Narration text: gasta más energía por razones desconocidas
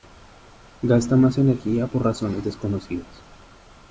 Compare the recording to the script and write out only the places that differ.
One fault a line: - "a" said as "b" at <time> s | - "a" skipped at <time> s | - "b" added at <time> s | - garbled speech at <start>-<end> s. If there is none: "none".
none